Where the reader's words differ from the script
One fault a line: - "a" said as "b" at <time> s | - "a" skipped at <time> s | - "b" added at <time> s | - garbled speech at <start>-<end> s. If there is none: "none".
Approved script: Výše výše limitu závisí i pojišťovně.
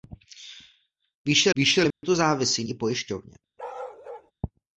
none